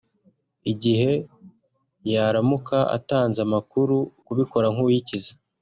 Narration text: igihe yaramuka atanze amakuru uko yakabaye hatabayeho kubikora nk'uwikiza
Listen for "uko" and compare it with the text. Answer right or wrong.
wrong